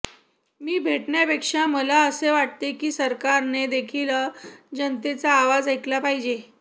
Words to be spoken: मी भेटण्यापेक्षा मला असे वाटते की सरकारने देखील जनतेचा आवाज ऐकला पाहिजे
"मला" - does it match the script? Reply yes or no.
yes